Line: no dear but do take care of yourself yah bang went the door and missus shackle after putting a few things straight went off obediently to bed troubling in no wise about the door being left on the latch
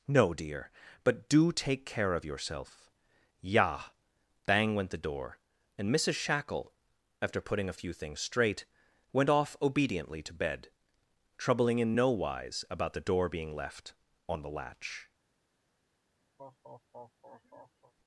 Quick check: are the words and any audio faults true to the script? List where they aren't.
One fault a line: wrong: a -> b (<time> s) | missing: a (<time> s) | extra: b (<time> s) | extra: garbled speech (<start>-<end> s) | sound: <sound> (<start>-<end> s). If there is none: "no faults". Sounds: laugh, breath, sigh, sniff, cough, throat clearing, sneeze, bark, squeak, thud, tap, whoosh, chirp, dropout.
sound: laugh (16.4-17.9 s)